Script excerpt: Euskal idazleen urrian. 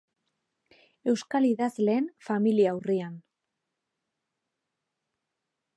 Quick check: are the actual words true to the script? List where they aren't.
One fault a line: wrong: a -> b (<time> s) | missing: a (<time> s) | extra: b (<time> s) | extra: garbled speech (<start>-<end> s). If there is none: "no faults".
extra: familia (2.3 s)